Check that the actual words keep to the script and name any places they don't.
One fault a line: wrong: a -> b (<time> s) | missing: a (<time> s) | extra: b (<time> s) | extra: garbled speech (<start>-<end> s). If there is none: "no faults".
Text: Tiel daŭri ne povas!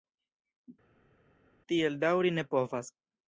no faults